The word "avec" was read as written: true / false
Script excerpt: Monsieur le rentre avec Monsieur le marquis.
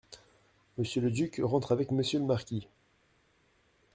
true